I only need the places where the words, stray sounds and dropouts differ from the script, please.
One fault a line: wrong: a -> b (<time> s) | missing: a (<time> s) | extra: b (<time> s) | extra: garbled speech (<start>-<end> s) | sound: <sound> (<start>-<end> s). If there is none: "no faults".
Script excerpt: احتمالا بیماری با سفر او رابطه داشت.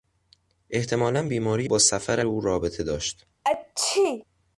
sound: sneeze (3.4-4.2 s)